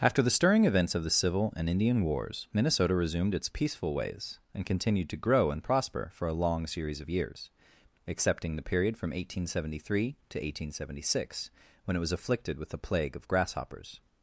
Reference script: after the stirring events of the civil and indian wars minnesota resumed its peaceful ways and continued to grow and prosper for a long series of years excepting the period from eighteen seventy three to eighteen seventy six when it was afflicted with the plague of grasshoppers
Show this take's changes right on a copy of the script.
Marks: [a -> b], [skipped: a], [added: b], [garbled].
after the stirring events of the civil and indian wars minnesota resumed its peaceful ways and continued to grow and prosper for a long series of years excepting the period from eighteen seventy three to eighteen seventy six when it was afflicted with the plague of grasshoppers